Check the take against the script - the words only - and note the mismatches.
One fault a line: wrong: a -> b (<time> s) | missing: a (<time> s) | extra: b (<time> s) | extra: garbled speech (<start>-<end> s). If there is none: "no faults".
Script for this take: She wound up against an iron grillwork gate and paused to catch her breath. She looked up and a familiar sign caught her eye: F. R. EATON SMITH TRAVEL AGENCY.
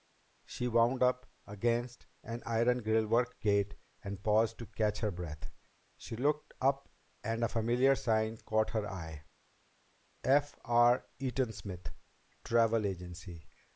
no faults